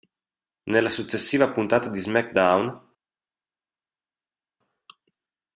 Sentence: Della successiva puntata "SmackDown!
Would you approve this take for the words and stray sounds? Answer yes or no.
no